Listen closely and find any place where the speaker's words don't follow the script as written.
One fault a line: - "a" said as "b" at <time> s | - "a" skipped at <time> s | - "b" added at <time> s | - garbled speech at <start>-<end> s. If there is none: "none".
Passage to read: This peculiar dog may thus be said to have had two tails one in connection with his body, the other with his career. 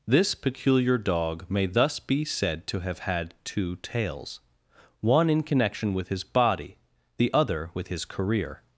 none